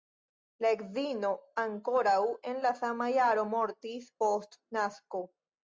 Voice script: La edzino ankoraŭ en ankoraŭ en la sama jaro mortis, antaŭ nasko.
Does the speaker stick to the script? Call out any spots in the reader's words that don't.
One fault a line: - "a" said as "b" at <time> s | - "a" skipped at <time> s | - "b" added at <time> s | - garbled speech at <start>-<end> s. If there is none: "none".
- "ankoraŭ en" skipped at 2.6 s
- "antaŭ" said as "post" at 4.2 s